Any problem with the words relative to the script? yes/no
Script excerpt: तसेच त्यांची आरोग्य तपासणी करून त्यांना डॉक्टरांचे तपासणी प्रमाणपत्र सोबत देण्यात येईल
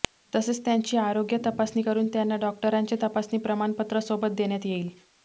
no